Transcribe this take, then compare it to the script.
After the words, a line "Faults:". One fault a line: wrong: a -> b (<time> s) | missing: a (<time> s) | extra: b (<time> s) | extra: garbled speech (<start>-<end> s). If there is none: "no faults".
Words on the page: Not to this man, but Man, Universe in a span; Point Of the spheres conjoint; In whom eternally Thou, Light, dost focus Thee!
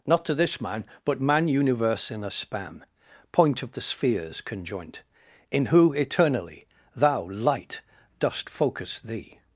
Not to this man, but Man, Universe in a span; Point Of the spheres conjoint; In who eternally Thou, Light, dost focus Thee!
Faults:
wrong: whom -> who (5.7 s)